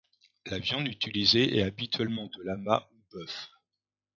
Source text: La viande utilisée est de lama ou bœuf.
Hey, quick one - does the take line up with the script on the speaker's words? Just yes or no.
no